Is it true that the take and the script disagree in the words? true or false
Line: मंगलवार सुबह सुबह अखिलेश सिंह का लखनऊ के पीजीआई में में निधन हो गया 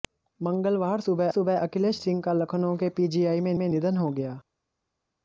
false